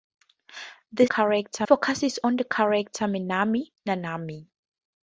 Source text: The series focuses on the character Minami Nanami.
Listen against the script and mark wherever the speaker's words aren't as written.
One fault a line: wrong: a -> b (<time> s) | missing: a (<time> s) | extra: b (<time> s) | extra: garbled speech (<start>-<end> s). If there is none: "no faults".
wrong: series -> character (1.0 s)